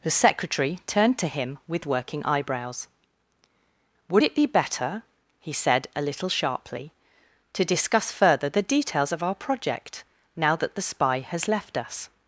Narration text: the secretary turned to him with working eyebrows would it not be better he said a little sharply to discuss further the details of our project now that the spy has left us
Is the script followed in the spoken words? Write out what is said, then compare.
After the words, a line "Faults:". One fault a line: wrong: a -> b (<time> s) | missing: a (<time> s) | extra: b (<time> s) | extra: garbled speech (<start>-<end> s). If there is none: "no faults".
the secretary turned to him with working eyebrows would it be better he said a little sharply to discuss further the details of our project now that the spy has left us
Faults:
missing: not (4.3 s)